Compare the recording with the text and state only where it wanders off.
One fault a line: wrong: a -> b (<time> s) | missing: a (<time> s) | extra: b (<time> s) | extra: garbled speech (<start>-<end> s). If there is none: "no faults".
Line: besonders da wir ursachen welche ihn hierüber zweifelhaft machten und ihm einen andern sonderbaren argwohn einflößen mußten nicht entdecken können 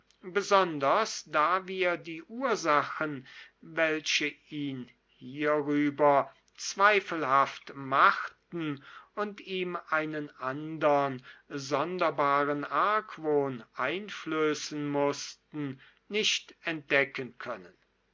extra: die (1.9 s)